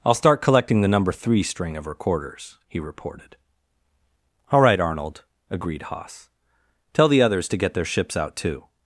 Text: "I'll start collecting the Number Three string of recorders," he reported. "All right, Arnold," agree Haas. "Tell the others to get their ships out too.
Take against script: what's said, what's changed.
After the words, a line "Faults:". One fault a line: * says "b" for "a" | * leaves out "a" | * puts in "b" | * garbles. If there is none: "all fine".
"I'll start collecting the Number Three string of recorders," he reported. "All right, Arnold," agreed Haas. "Tell the others to get their ships out too.
Faults:
* says "agreed" for "agree"